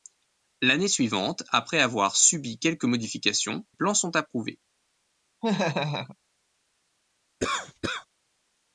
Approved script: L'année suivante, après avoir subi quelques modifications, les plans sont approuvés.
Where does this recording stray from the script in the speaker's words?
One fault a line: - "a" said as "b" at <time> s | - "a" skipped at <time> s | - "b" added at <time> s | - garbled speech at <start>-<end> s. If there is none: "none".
- "les" skipped at 3.7 s